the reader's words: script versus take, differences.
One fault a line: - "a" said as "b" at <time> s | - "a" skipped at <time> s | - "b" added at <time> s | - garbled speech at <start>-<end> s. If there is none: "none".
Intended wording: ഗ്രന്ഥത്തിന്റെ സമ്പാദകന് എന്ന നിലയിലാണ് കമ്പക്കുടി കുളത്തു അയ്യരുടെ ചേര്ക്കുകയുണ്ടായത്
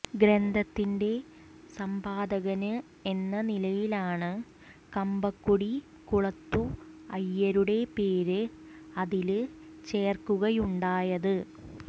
- "പേര് അതില്" added at 8.0 s